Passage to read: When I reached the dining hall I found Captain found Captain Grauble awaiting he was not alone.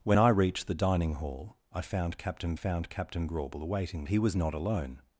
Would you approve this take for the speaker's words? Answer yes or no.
yes